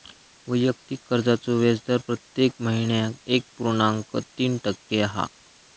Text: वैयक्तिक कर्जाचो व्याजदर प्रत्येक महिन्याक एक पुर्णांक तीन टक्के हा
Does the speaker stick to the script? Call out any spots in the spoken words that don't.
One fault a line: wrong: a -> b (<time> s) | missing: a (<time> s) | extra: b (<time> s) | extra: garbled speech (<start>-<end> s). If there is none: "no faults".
no faults